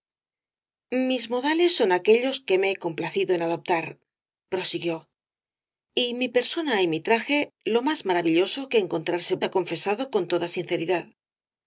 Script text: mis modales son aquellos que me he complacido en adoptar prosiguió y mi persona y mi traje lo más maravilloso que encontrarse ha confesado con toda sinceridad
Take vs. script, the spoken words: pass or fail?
pass